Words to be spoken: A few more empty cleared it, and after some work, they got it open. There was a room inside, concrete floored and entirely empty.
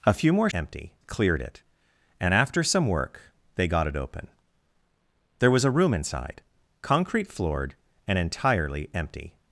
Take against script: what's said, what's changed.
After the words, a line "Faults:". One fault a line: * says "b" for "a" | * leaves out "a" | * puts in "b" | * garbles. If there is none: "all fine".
A few more empty cleared it, and after some work, they got it open. There was a room inside, concrete floored and entirely empty.
Faults:
all fine